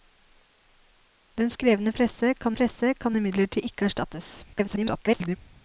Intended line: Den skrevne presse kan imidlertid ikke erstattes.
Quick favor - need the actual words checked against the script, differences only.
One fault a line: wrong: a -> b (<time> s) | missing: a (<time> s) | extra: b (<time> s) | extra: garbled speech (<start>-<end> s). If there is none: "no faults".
extra: presse kan (2.5 s)
extra: garbled speech (4.5-5.4 s)